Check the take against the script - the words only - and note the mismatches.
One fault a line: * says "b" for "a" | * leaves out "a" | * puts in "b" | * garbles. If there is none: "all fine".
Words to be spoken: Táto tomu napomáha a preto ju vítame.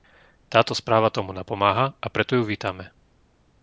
* puts in "správa"